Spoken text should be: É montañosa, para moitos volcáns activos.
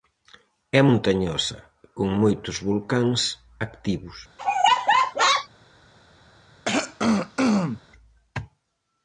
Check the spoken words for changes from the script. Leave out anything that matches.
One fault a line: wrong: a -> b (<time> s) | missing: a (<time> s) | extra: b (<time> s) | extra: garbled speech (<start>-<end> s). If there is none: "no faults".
wrong: para -> con (2.0 s)